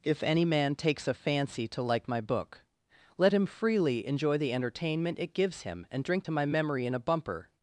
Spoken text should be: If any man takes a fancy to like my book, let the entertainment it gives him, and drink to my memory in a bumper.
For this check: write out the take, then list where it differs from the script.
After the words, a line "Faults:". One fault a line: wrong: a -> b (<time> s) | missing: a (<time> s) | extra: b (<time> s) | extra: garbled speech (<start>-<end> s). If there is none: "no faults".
If any man takes a fancy to like my book, let him freely enjoy the entertainment it gives him, and drink to my memory in a bumper.
Faults:
extra: him freely enjoy (3.4 s)